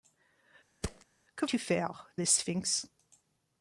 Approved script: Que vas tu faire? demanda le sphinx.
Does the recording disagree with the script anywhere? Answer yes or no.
yes